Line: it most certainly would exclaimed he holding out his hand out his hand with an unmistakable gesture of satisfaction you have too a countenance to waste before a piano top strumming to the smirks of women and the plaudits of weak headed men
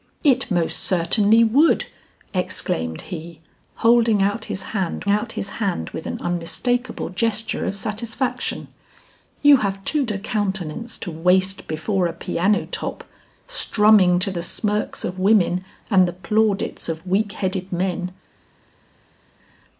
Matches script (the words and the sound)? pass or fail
pass